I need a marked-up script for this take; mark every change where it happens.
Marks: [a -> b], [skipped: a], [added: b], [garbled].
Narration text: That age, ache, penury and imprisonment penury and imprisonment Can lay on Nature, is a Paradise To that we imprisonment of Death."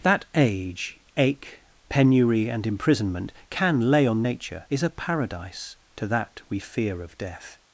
That age, ache, penury and imprisonment [skipped: penury and imprisonment] Can lay on Nature, is a Paradise To that we [imprisonment -> fear] of Death."